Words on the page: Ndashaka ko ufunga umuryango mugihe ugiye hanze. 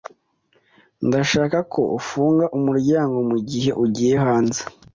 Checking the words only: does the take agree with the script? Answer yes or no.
yes